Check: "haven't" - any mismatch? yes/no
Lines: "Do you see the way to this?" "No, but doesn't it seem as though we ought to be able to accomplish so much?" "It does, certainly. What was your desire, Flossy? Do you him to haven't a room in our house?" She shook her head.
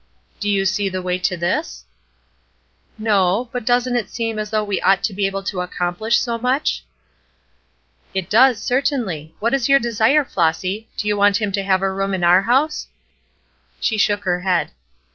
yes